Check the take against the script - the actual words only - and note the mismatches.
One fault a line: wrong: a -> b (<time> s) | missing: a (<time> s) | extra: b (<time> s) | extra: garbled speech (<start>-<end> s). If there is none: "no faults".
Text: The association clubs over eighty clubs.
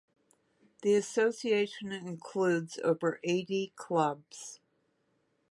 wrong: clubs -> includes (1.9 s)